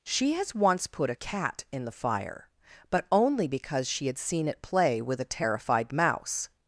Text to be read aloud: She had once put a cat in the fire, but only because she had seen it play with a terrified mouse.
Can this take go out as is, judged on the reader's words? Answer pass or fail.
fail